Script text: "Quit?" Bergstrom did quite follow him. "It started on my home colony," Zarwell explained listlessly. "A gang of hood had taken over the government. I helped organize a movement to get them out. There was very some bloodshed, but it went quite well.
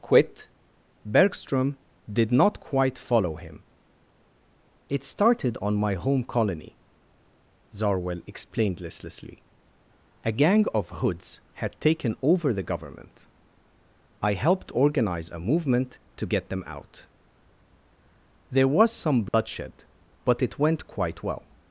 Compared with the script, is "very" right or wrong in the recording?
wrong